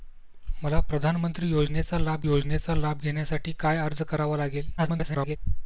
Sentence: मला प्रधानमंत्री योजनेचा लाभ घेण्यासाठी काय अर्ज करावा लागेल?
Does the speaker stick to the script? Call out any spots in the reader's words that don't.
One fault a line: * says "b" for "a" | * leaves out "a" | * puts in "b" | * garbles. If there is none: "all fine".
* puts in "योजनेचा लाभ"
* garbles